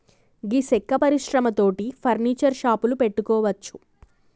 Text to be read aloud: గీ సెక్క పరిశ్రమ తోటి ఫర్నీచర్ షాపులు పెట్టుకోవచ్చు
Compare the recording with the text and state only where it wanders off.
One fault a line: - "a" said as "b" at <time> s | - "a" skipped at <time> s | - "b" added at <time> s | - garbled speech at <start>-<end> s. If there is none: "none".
none